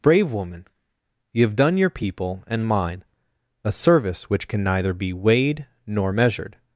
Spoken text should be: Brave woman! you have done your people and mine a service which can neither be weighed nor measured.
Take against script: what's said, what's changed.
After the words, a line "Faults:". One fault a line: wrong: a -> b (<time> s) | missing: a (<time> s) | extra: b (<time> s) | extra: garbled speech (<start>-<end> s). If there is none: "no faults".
Brave woman! you have done your people and mine a service which can neither be weighed nor measured.
Faults:
no faults